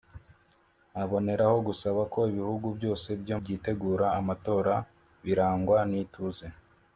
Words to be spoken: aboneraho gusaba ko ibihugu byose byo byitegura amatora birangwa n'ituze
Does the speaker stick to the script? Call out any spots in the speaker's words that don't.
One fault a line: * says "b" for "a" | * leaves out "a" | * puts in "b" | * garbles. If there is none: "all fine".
all fine